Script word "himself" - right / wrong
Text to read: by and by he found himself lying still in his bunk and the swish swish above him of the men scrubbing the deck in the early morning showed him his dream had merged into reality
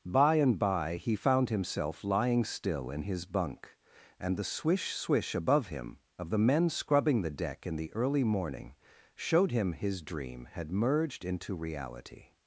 right